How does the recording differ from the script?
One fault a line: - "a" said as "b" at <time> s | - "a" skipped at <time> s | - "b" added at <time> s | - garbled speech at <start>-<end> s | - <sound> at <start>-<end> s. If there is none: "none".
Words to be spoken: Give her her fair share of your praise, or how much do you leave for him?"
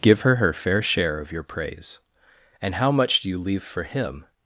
- "or" said as "and" at 2.6 s